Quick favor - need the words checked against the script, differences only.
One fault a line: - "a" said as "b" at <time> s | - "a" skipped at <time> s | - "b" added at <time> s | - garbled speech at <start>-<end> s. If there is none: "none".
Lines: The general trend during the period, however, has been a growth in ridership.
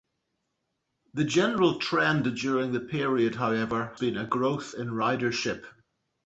- "has" skipped at 4.0 s